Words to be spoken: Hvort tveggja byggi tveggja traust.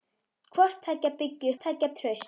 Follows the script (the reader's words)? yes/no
yes